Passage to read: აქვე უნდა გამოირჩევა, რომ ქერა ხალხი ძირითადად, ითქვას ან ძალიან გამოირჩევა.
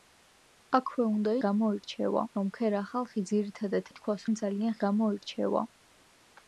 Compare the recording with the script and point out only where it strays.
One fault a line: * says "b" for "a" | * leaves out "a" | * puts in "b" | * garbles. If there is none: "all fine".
all fine